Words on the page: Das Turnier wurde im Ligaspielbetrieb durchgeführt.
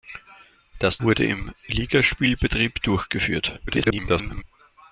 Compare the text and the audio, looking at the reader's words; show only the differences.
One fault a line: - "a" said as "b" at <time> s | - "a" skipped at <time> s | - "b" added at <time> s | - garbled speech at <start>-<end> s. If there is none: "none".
- "Turnier" skipped at 1.0 s
- garbled speech at 3.7-4.4 s